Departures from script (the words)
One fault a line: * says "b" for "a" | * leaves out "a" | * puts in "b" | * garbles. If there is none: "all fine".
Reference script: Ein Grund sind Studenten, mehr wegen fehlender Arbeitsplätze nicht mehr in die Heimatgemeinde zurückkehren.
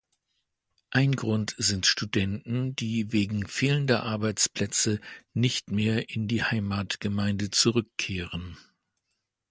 * says "die" for "mehr"